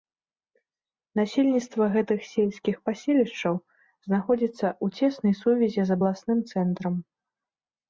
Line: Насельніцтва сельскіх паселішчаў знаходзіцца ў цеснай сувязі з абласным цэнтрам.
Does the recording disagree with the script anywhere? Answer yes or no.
yes